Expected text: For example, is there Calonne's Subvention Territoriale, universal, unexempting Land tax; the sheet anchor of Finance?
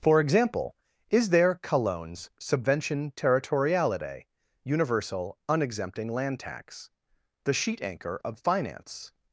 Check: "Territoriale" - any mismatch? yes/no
no